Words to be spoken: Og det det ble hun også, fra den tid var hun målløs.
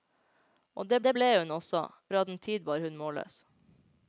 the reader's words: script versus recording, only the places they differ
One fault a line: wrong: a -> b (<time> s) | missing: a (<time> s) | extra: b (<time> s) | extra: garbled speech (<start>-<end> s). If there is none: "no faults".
no faults